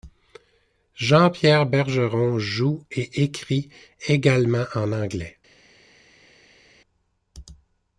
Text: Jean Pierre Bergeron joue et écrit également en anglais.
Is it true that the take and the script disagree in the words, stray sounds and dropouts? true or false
false